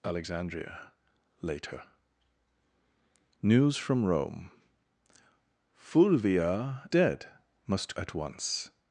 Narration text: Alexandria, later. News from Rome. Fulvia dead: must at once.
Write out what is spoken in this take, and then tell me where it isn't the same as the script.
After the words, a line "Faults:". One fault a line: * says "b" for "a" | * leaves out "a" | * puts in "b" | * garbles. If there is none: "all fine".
Alexandria, later. News from Rome. Fulvia dead: must at once.
Faults:
all fine